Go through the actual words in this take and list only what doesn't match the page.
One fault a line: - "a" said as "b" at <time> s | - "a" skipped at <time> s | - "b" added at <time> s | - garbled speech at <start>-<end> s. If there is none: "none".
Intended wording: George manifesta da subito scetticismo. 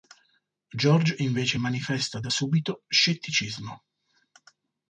- "invece" added at 1.2 s